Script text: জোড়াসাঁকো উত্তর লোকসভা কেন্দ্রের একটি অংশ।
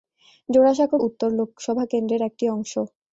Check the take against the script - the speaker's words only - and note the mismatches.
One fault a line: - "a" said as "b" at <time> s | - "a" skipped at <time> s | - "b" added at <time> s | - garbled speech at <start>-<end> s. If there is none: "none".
none